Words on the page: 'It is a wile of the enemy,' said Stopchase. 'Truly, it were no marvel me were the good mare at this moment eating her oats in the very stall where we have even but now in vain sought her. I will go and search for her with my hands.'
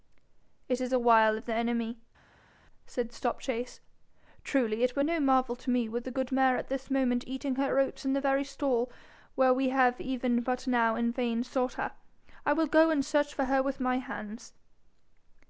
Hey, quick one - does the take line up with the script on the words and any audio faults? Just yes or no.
no